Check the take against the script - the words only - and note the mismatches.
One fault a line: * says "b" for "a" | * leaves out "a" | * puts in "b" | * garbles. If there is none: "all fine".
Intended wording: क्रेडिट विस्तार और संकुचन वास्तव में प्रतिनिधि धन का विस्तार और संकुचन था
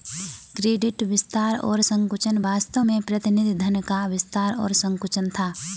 all fine